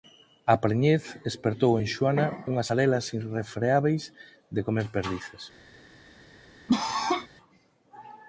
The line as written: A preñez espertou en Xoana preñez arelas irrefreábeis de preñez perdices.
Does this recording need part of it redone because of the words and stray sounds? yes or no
yes